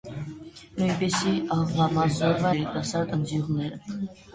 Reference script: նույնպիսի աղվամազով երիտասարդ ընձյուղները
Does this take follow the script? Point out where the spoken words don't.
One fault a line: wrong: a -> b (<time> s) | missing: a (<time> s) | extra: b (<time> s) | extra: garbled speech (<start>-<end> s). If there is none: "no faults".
no faults